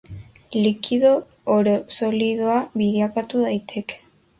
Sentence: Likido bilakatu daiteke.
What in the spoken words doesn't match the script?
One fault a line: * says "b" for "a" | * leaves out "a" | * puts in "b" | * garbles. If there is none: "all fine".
* puts in "oro solidoa"